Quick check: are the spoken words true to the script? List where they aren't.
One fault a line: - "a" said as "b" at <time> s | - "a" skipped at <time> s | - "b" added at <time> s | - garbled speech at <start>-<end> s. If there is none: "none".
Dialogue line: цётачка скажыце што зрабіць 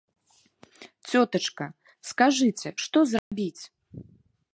none